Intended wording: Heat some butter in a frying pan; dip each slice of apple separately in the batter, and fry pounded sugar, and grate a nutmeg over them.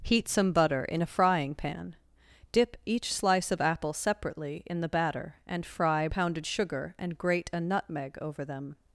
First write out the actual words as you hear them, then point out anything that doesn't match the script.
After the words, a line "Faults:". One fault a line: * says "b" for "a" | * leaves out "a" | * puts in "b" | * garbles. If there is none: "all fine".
Heat some butter in a frying pan; dip each slice of apple separately in the batter, and fry pounded sugar, and grate a nutmeg over them.
Faults:
all fine